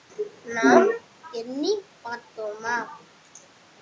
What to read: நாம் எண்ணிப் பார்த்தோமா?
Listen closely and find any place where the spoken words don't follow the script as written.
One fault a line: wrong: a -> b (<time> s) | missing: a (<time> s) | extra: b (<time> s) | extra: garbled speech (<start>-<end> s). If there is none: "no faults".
no faults